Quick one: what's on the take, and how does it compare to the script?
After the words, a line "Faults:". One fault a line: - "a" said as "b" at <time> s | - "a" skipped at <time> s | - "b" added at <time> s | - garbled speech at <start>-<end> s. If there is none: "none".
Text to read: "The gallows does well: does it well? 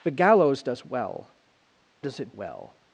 "The gallows does well: does it well?
Faults:
none